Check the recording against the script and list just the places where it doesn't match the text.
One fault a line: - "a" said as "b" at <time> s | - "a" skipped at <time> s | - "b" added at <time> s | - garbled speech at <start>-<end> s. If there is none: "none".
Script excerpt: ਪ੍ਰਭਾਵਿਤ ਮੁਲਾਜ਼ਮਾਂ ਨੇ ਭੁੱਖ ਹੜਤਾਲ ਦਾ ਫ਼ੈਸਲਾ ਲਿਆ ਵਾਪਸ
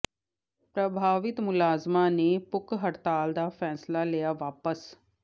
none